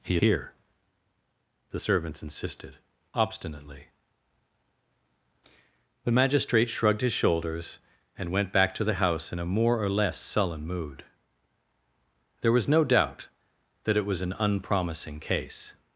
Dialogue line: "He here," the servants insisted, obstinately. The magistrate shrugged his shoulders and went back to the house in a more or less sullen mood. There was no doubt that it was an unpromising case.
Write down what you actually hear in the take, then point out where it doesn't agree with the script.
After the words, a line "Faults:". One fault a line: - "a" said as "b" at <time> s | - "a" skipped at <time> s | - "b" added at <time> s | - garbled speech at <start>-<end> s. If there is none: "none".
"He here," the servants insisted, obstinately. The magistrate shrugged his shoulders and went back to the house in a more or less sullen mood. There was no doubt that it was an unpromising case.
Faults:
none